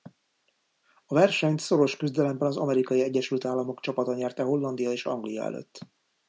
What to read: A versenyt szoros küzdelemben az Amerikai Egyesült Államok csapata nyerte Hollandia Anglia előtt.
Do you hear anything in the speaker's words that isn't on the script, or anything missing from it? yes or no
yes